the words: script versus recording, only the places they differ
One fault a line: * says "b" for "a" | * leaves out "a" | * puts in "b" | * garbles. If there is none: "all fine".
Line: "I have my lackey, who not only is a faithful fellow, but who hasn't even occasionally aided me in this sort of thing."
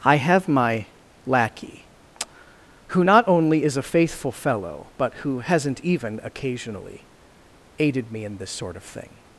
all fine